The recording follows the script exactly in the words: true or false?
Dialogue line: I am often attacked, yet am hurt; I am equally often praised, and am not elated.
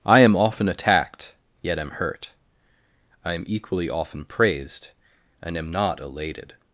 true